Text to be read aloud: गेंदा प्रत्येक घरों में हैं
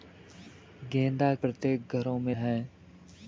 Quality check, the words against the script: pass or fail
pass